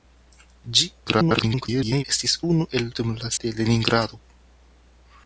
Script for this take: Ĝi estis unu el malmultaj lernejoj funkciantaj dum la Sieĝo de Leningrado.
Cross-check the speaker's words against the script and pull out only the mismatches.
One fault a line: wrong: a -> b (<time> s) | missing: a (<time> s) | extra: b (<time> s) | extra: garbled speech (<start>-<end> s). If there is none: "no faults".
extra: garbled speech (1.1-2.0 s)
missing: malmultaj lernejoj funkciantaj (2.9 s)
missing: Sieĝo (3.3 s)